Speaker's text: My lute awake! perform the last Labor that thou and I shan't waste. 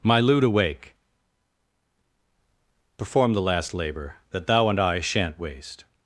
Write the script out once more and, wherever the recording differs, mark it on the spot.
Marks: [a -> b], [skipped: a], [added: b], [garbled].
My lute awake! perform the last Labor that thou and I shan't waste.